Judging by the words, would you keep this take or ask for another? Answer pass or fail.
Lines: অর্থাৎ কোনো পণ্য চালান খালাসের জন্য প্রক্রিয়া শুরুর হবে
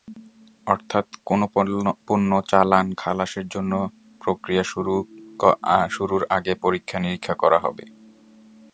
fail